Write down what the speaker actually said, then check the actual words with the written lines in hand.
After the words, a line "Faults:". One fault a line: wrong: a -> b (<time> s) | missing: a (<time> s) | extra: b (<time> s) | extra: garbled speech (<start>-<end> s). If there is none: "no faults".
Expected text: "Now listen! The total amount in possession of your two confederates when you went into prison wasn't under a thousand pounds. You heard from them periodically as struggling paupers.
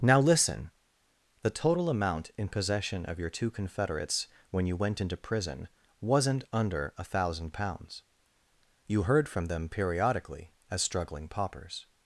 "Now listen! The total amount in possession of your two confederates when you went into prison wasn't under a thousand pounds. You heard from them periodically as struggling paupers.
Faults:
no faults